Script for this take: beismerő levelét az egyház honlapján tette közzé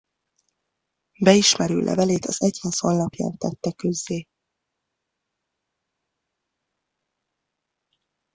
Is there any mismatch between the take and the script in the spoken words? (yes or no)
no